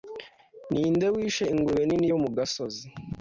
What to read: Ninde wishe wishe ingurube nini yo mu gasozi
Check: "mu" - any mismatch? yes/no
no